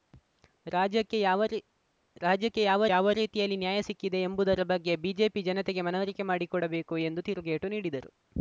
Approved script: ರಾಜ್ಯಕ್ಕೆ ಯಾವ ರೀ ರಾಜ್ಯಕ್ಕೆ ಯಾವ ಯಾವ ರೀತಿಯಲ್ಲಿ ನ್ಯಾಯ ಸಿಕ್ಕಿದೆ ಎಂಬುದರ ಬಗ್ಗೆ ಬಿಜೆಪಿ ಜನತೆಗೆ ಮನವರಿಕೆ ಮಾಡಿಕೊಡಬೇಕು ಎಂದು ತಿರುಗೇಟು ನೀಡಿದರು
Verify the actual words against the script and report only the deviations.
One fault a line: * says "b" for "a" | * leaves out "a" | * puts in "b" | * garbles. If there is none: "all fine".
all fine